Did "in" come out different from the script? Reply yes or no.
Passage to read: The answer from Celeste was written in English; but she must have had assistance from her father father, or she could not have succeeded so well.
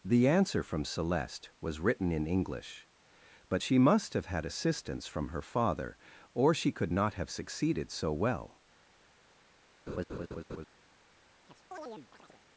no